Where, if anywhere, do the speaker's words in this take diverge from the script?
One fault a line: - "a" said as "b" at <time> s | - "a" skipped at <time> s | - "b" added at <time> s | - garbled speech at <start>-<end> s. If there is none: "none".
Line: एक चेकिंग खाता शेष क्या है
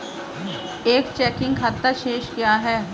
none